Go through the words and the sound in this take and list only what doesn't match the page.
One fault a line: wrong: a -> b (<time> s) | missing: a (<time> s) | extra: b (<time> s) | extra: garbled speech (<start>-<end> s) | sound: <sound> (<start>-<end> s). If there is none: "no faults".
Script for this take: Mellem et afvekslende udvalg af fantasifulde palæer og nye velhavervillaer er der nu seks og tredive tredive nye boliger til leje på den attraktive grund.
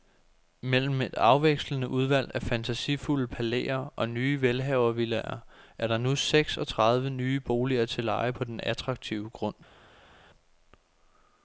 missing: tredive (7.1 s)